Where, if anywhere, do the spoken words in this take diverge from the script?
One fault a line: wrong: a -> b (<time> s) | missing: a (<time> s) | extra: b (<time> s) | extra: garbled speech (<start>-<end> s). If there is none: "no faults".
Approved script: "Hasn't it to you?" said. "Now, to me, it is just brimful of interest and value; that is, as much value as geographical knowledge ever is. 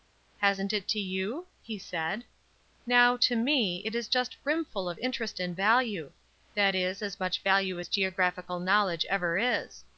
extra: he (1.6 s)